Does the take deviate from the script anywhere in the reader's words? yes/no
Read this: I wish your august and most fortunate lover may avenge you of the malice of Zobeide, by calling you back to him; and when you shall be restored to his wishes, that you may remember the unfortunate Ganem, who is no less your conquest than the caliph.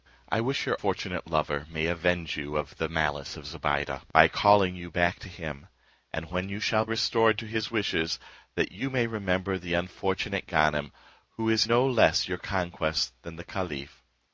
yes